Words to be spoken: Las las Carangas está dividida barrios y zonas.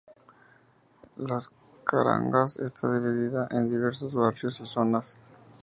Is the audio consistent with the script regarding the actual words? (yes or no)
no